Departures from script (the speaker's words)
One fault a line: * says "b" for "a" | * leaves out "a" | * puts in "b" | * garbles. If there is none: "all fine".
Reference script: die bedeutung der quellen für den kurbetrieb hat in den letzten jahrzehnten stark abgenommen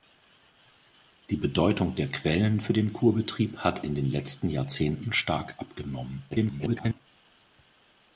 * garbles